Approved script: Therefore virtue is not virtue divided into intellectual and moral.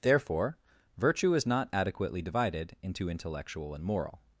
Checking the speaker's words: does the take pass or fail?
fail